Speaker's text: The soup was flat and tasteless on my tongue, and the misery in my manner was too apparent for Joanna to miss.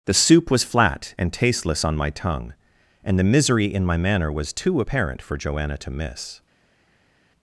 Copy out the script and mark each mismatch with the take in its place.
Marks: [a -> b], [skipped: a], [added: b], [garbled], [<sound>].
The soup was flat and tasteless on my tongue, and the misery in my manner was too apparent for Joanna to miss.